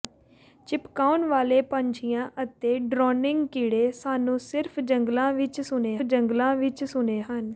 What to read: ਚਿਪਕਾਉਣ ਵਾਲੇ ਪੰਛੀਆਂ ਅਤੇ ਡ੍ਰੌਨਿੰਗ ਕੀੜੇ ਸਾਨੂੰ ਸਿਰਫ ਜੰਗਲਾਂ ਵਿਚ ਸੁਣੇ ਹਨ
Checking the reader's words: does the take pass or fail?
fail